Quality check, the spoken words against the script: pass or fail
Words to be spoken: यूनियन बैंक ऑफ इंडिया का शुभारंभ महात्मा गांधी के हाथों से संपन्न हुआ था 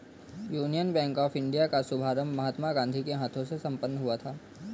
pass